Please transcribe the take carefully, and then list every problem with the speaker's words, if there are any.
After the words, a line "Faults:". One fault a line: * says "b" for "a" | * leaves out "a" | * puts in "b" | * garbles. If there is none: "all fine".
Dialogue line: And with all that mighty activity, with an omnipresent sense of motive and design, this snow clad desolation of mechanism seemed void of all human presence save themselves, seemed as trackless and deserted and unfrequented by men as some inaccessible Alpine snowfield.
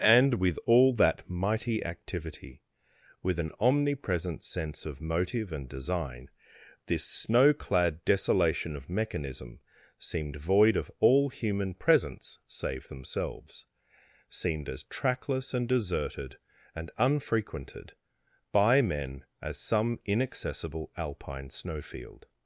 And with all that mighty activity, with an omnipresent sense of motive and design, this snow clad desolation of mechanism seemed void of all human presence save themselves, seemed as trackless and deserted and unfrequented by men as some inaccessible Alpine snowfield.
Faults:
all fine